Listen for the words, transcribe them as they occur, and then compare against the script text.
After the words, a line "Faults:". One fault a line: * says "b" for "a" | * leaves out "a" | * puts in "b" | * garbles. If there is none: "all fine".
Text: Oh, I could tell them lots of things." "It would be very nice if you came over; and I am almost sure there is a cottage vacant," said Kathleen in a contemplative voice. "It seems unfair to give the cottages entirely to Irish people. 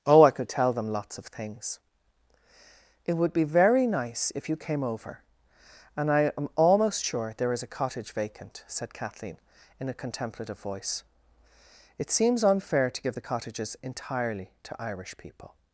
Oh, I could tell them lots of things." "It would be very nice if you came over; and I am almost sure there is a cottage vacant," said Kathleen in a contemplative voice. "It seems unfair to give the cottages entirely to Irish people.
Faults:
all fine